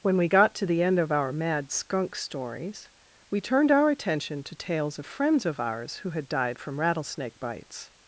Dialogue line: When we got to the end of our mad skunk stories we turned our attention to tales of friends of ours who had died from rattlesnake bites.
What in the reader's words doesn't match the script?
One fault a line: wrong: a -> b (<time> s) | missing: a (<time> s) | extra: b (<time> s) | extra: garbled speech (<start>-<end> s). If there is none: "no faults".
no faults